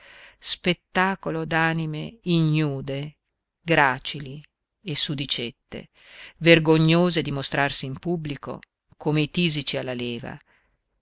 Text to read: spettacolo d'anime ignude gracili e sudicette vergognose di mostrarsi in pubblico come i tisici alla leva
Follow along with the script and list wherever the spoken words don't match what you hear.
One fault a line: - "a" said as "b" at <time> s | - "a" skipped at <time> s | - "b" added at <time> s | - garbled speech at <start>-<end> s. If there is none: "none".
none